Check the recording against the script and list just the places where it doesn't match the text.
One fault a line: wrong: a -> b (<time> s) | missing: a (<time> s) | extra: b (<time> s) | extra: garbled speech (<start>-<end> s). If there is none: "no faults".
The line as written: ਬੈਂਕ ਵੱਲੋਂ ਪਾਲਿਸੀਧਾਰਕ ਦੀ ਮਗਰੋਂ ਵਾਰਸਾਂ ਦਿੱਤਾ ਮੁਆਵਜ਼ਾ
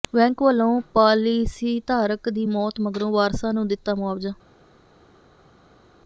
extra: ਮੌਤ (2.4 s)
extra: ਨੂੰ (3.5 s)